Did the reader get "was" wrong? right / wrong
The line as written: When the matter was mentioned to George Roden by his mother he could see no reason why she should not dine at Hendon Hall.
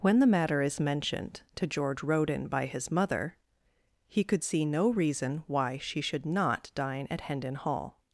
wrong